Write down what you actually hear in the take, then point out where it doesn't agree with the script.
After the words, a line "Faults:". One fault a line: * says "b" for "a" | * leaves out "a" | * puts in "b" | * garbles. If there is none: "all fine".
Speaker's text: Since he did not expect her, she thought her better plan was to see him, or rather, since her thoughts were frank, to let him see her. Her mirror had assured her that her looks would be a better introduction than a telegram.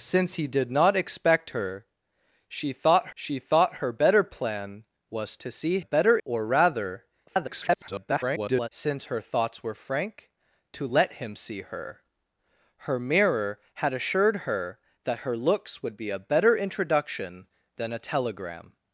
Since he did not expect her, she thought she thought her better plan was to see better, or rather, [garbled] since her thoughts were frank, to let him see her. Her mirror had assured her that her looks would be a better introduction than a telegram.
Faults:
* puts in "she thought"
* says "better" for "him"
* garbles